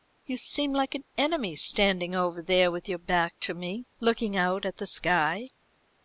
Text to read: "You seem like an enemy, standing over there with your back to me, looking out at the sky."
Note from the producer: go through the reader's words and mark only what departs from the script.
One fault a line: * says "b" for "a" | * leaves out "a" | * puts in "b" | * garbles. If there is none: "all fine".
all fine